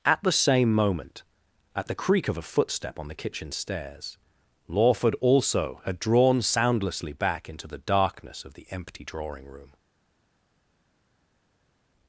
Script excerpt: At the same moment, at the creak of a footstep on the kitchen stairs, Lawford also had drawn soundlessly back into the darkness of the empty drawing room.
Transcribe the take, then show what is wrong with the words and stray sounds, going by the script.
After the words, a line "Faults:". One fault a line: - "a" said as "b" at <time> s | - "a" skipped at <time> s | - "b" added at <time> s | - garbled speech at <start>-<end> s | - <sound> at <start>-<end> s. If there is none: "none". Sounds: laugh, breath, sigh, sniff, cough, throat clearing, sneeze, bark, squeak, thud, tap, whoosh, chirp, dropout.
At the same moment, at the creak of a footstep on the kitchen stairs, Lawford also had drawn soundlessly back into the darkness of the empty drawing room.
Faults:
none